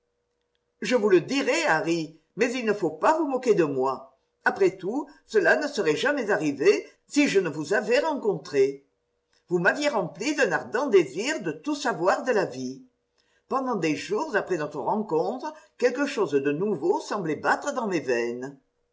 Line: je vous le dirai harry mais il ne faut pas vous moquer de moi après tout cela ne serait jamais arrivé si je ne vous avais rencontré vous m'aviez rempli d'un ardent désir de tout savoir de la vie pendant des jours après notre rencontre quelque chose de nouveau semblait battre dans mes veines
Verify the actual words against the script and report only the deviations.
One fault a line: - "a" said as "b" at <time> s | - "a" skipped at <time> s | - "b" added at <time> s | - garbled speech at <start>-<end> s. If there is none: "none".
none